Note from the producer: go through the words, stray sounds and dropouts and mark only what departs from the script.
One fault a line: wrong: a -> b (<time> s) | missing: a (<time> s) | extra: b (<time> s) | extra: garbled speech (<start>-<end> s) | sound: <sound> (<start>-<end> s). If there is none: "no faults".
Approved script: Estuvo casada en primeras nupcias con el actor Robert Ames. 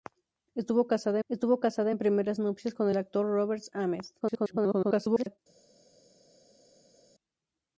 extra: estuvo casada (1.3 s)
extra: garbled speech (4.2-5.4 s)